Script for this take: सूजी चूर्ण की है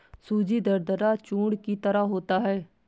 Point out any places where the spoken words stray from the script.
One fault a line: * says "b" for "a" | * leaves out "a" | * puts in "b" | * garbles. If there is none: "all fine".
* puts in "दरदरा"
* puts in "तरह होता"